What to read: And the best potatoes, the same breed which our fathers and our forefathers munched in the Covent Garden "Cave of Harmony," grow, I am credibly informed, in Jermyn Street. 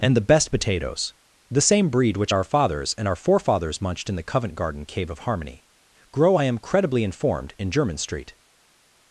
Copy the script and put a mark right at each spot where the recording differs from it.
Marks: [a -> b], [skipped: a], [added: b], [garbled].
And the best potatoes, the same breed which our fathers and our forefathers munched in the Covent Garden "Cave of Harmony," grow, I am credibly informed, in Jermyn Street.